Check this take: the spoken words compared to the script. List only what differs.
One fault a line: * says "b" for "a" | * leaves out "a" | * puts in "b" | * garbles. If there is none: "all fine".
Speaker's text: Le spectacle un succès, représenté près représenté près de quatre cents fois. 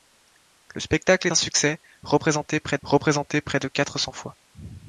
all fine